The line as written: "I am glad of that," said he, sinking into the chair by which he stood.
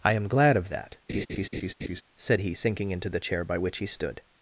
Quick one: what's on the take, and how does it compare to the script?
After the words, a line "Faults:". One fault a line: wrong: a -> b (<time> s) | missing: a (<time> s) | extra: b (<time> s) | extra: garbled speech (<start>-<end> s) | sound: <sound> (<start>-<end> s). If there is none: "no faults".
"I am glad of that," said he, sinking into the chair by which he stood.
Faults:
sound: laugh (1.1-2.0 s)